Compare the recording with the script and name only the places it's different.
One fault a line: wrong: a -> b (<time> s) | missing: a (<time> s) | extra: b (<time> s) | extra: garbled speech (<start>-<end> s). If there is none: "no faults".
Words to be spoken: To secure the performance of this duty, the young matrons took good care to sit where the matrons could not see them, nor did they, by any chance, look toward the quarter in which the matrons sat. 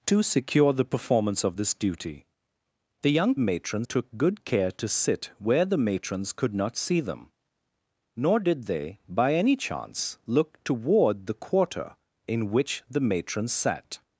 no faults